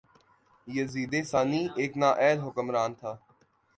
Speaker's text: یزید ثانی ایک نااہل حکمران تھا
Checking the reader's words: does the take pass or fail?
pass